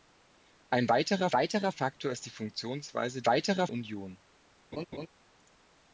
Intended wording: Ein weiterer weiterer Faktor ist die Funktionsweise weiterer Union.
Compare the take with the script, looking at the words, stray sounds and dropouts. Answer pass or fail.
fail